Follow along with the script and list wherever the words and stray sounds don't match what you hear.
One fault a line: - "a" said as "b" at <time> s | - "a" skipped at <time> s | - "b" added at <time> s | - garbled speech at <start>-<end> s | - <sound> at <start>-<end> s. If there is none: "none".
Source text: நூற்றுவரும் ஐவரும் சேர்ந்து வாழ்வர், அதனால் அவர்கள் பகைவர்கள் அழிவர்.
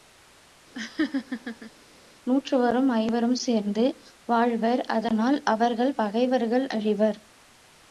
- laugh at 0.7-1.7 s